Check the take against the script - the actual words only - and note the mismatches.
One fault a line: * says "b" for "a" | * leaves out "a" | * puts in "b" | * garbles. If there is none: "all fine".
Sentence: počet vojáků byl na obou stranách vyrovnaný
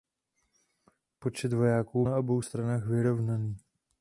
* leaves out "byl"